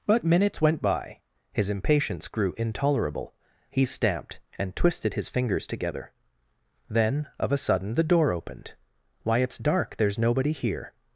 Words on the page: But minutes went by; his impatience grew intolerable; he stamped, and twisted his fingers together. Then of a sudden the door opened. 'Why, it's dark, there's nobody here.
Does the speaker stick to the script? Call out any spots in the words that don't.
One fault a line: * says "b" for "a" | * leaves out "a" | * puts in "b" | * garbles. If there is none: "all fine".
all fine